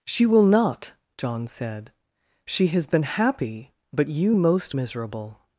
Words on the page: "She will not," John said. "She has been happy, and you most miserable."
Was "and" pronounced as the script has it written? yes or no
no